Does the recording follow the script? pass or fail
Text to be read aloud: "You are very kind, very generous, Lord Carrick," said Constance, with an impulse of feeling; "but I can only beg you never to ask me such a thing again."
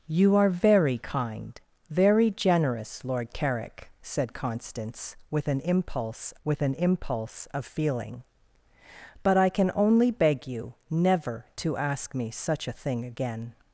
fail